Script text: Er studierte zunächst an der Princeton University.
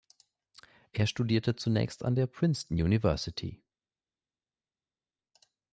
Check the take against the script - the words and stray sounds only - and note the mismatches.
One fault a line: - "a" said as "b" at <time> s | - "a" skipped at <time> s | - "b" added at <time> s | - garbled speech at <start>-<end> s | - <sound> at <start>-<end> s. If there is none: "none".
none